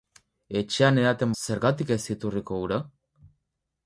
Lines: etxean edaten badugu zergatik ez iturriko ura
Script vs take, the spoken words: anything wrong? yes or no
yes